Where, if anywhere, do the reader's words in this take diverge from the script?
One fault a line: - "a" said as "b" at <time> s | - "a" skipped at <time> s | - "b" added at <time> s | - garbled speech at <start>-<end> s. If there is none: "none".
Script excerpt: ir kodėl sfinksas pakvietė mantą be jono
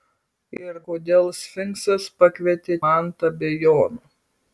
none